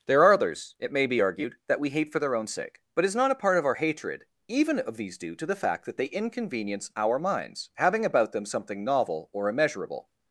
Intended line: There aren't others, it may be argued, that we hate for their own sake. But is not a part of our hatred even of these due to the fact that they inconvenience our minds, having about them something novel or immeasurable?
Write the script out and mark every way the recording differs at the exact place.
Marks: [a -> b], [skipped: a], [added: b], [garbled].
There [aren't -> are] others, it may be argued, that we hate for their own sake. But is not a part of our hatred even of these due to the fact that they inconvenience our minds, having about them something novel or immeasurable?